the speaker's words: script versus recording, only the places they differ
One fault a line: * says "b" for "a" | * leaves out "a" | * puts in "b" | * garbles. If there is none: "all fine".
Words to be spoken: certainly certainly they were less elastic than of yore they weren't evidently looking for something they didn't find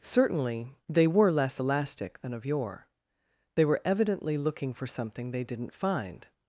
* leaves out "certainly"
* says "were" for "weren't"